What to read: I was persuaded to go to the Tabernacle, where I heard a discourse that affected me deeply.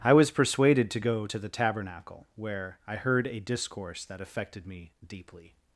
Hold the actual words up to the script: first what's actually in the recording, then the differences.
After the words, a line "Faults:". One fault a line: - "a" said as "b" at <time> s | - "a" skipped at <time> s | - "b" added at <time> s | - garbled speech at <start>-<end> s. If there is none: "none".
I was persuaded to go to the Tabernacle, where I heard a discourse that affected me deeply.
Faults:
none